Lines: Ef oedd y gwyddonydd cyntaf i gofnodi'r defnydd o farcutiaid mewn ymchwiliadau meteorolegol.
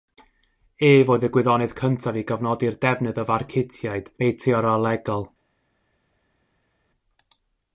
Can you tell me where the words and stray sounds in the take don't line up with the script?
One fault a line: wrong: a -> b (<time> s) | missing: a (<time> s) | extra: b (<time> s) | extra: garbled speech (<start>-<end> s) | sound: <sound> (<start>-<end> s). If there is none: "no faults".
missing: mewn ymchwiliadau (4.1 s)